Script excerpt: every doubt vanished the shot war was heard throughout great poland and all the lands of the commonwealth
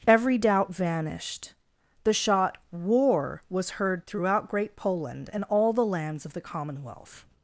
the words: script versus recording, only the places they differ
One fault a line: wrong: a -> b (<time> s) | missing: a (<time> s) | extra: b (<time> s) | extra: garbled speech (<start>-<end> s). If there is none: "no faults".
no faults